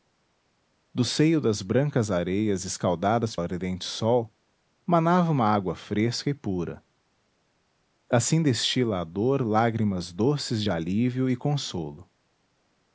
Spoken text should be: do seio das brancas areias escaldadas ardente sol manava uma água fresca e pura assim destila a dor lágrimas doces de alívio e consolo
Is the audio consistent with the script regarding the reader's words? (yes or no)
yes